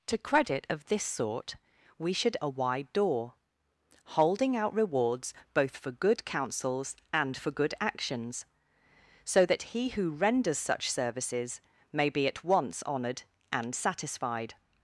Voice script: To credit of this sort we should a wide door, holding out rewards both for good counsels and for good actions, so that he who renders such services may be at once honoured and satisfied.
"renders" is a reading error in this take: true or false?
false